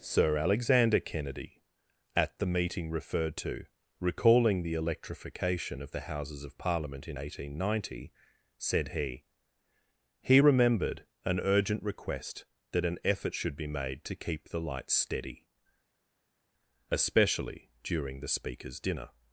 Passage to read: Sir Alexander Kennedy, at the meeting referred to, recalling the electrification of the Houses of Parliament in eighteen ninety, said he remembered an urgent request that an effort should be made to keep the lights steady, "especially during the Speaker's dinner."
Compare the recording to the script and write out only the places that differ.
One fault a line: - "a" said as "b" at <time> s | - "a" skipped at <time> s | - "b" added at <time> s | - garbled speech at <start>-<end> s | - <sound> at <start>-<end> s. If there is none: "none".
- "he" added at 10.2 s